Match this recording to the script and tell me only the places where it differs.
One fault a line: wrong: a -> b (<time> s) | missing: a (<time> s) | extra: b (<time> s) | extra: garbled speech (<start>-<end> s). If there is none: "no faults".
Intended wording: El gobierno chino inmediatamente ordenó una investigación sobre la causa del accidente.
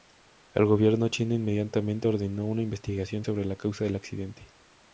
no faults